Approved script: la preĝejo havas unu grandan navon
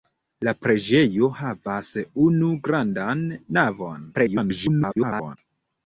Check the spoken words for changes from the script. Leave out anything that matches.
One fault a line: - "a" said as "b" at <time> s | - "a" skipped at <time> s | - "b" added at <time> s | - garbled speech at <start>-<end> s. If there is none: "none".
- garbled speech at 4.1-5.4 s